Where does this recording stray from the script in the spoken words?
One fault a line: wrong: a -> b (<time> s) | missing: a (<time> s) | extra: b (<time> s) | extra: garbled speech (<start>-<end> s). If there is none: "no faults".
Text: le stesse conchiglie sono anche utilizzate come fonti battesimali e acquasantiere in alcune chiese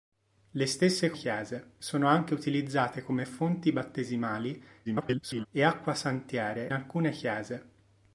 wrong: conchiglie -> chiese (1.1 s)
extra: garbled speech (4.8-5.5 s)
missing: in (6.7 s)